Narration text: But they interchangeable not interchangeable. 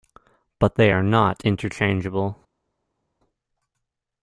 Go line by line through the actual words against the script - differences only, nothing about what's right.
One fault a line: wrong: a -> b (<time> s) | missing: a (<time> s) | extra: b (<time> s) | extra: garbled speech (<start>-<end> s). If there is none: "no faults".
wrong: interchangeable -> are (0.9 s)